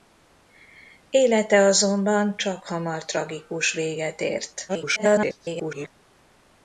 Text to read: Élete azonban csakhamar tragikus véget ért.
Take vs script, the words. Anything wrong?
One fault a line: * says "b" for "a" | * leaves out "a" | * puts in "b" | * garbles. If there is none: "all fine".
* garbles